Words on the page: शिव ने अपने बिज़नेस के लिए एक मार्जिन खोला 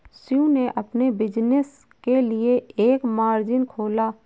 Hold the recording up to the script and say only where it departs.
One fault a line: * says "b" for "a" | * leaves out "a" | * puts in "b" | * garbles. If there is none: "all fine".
all fine